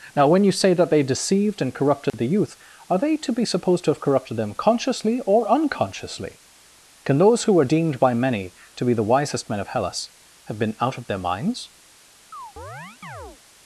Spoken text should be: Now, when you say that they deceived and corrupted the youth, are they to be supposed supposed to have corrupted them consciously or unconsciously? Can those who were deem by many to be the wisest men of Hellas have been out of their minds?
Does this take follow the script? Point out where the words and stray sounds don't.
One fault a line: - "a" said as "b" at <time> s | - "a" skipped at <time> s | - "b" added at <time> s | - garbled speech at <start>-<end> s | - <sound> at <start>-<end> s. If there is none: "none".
- dropout at 2.1-2.1 s
- "supposed" skipped at 3.9 s
- "deem" said as "deemed" at 7.6 s
- chirp at 12.3-13.4 s